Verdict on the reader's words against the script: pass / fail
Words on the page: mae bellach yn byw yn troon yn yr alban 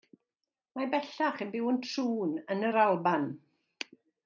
pass